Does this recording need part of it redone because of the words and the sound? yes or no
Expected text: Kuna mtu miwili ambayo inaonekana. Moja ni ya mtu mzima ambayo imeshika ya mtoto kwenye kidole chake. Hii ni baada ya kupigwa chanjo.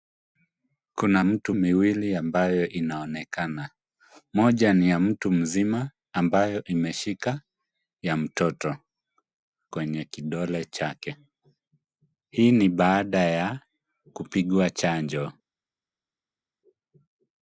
no